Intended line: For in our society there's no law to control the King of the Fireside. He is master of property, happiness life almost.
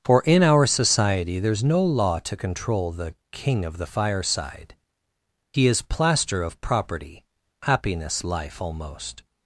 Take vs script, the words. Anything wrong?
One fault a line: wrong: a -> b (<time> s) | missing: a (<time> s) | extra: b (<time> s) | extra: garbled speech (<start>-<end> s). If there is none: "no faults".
wrong: master -> plaster (5.8 s)